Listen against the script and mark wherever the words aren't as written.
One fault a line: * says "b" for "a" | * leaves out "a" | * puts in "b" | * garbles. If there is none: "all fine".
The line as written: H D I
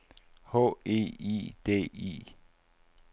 * puts in "E I"